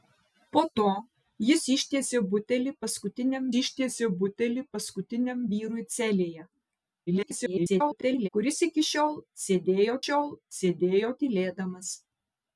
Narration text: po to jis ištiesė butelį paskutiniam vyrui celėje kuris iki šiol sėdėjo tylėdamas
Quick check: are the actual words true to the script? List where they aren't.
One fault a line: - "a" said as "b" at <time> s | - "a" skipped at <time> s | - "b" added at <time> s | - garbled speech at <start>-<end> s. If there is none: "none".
- "ištiesė butelį paskutiniam" added at 3.6 s
- garbled speech at 7.1-8.3 s
- "šiol sėdėjo" added at 10.0 s